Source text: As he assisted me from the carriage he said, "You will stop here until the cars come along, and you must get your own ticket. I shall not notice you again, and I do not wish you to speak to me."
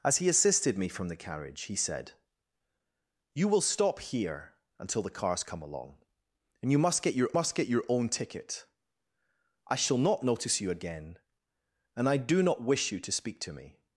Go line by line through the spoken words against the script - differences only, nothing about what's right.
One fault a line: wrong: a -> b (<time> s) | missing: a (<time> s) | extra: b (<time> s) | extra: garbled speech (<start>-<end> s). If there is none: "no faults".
extra: must get your (7.3 s)